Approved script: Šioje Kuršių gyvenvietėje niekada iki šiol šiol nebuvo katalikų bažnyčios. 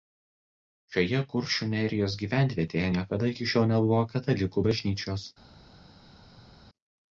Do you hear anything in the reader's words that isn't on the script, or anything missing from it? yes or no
yes